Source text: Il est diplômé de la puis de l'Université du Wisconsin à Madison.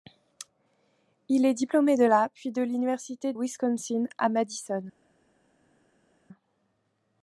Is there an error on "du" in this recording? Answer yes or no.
yes